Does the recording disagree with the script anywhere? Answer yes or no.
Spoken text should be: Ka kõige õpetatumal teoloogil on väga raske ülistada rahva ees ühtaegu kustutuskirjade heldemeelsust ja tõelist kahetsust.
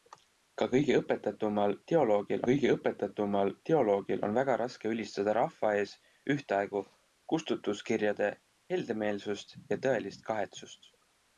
yes